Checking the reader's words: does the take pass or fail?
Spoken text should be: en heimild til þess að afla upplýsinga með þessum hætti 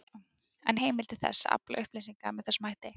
pass